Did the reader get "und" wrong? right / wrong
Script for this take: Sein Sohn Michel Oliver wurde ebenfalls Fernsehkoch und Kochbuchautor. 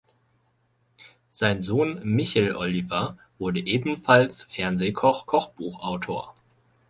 wrong